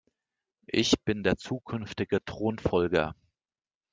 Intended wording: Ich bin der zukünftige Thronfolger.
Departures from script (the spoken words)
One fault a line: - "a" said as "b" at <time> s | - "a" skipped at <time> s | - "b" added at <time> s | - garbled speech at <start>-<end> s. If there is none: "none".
none